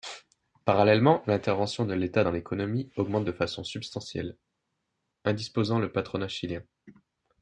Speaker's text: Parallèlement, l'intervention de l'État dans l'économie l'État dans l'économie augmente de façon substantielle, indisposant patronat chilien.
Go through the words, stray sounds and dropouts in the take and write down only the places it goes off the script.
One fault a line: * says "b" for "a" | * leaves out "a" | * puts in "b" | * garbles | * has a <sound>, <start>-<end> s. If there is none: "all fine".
* leaves out "l'État dans l'économie"
* puts in "le"